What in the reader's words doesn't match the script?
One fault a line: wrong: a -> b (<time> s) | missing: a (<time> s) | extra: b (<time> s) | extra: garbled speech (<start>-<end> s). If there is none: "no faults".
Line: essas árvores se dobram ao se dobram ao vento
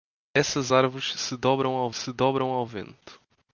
no faults